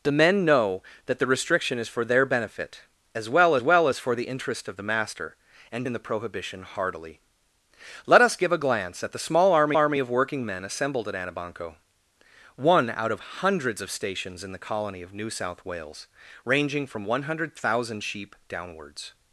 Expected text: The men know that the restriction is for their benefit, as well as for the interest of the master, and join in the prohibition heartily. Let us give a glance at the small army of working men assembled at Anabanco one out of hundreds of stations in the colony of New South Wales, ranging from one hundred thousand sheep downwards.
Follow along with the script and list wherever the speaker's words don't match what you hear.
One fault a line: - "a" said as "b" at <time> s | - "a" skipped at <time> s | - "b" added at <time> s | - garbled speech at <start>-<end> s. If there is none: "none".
- "well" added at 3.6 s
- "join" skipped at 5.9 s
- "army" added at 9.7 s